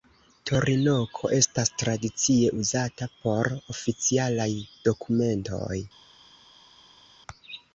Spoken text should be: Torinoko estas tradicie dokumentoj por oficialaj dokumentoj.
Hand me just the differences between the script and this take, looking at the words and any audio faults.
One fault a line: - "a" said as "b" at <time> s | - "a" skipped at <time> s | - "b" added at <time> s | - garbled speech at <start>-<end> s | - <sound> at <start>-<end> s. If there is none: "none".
- "dokumentoj" said as "uzata" at 2.6 s